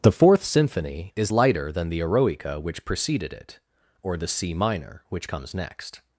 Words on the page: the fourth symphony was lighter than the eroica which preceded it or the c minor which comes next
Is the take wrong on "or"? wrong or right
right